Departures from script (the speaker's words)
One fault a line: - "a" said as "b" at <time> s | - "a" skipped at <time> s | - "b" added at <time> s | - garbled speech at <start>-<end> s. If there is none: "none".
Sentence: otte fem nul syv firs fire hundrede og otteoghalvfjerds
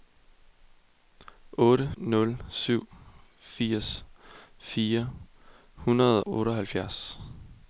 - "fem" skipped at 1.9 s
- "og" skipped at 6.2 s